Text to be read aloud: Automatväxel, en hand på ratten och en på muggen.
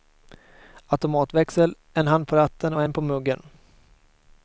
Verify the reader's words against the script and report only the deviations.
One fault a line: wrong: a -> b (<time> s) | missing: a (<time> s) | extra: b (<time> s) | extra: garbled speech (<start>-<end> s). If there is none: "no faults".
no faults